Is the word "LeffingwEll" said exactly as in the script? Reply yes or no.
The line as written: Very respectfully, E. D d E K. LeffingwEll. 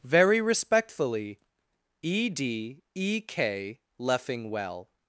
yes